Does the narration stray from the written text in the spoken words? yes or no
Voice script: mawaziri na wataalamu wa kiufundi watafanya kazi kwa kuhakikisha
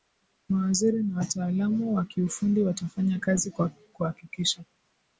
no